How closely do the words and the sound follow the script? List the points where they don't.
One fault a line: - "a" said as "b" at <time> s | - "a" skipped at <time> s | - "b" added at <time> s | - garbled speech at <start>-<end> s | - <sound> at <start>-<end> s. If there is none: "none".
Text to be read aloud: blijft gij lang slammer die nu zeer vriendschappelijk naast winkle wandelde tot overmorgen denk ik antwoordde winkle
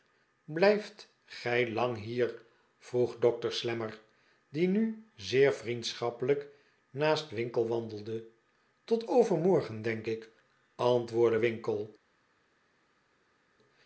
- "hier vroeg dokter" added at 2.0 s